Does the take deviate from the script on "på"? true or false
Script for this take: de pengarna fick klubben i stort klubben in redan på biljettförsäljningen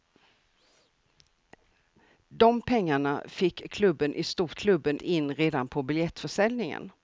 false